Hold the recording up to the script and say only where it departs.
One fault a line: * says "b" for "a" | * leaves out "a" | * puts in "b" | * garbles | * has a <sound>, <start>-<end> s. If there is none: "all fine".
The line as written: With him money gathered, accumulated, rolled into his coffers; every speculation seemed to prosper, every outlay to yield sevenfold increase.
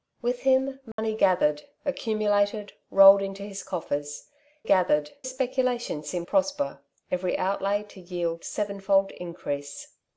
* has a dropout, 0.9-1.0 s
* says "gathered" for "every"
* leaves out "to"